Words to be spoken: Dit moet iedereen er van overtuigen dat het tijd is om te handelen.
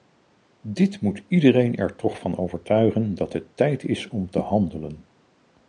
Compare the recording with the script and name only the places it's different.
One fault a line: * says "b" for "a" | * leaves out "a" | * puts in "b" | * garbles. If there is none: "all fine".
* puts in "toch"